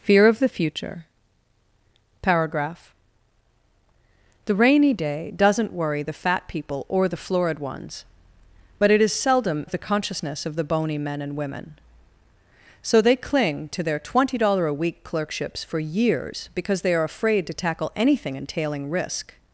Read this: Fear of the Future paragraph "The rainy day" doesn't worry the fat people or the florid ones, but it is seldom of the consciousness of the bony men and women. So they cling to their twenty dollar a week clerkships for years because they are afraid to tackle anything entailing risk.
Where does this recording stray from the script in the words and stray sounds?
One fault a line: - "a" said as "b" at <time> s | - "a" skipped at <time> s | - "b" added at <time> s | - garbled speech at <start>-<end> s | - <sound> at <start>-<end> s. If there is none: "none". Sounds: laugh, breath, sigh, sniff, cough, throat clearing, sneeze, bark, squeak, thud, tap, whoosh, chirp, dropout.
none